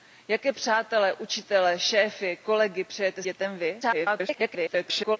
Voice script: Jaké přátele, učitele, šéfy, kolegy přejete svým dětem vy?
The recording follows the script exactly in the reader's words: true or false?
false